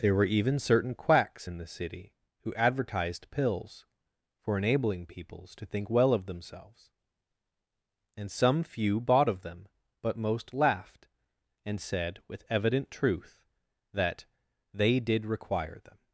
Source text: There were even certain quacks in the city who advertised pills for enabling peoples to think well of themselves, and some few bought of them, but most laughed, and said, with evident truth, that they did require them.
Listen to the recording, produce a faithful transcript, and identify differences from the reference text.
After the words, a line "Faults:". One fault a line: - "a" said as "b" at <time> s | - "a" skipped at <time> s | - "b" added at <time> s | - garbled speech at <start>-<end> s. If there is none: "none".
There were even certain quacks in the city who advertised pills for enabling peoples to think well of themselves, and some few bought of them, but most laughed, and said, with evident truth, that they did require them.
Faults:
none